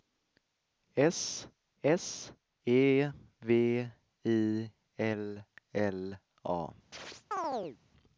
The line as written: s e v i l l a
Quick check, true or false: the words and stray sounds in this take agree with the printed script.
false